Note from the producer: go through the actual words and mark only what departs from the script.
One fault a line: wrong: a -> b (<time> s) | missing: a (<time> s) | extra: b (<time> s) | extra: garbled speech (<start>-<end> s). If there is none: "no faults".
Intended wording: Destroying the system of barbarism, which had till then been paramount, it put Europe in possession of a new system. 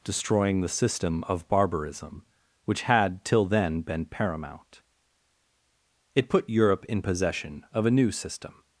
no faults